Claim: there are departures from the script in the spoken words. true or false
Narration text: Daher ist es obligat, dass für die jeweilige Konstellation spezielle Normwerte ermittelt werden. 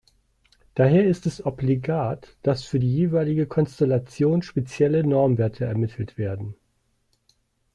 false